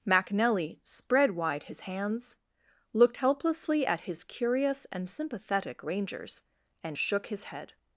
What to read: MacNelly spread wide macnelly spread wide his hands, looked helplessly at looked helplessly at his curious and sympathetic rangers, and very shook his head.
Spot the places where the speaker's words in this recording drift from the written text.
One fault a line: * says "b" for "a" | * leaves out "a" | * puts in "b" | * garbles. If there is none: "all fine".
* leaves out "macnelly spread wide"
* leaves out "looked helplessly at"
* leaves out "very"